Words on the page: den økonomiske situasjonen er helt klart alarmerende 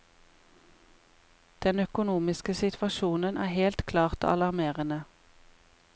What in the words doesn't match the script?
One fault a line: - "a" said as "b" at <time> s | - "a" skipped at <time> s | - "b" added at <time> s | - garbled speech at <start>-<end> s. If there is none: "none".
none